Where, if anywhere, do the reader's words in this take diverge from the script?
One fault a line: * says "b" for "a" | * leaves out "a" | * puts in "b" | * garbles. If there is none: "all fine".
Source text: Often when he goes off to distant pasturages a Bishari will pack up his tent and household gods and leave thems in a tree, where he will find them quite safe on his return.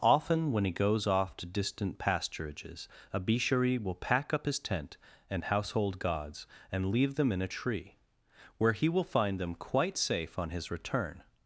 * says "them" for "thems"